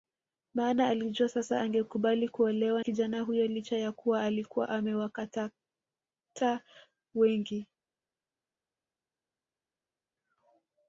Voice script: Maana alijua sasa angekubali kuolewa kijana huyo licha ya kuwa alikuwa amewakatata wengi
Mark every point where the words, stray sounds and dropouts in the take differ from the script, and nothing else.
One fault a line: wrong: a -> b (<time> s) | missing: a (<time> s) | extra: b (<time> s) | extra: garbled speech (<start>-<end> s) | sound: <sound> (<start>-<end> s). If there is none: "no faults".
no faults